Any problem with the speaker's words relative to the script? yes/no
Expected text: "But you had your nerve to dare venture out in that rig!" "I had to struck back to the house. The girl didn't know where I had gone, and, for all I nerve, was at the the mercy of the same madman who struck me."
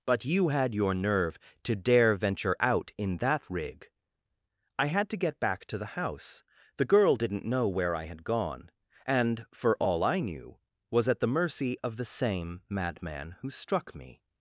yes